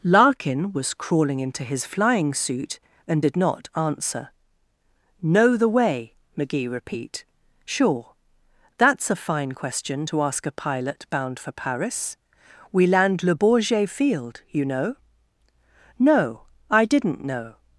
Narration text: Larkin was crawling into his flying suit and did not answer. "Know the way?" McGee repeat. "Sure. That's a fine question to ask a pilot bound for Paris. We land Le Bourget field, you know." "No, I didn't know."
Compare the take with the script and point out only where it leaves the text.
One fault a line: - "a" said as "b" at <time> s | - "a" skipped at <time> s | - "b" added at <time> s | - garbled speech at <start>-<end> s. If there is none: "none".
none